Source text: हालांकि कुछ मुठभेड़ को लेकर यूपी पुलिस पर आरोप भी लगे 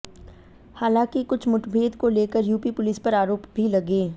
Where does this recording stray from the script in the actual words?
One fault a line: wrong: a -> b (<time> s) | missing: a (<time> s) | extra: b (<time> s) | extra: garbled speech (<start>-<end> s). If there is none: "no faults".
no faults